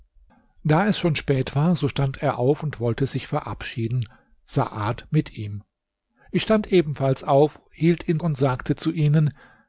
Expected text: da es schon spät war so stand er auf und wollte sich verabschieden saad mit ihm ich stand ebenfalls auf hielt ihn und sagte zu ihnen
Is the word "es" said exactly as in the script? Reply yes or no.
yes